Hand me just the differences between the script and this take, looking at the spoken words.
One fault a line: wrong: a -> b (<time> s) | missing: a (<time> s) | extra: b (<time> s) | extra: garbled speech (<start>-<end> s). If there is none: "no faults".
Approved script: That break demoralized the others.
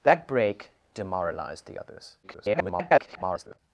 extra: garbled speech (2.2-3.6 s)